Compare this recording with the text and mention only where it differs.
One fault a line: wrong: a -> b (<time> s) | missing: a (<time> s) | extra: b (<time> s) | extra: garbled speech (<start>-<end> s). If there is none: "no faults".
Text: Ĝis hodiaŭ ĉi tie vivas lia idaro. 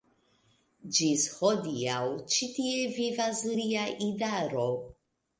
no faults